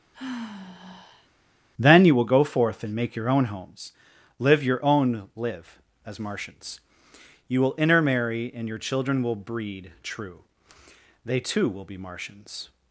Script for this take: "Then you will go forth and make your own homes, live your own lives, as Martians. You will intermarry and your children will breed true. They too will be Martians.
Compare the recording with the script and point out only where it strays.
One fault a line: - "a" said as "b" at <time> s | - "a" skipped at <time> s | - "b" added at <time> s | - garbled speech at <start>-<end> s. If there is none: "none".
- "lives" said as "live" at 5.4 s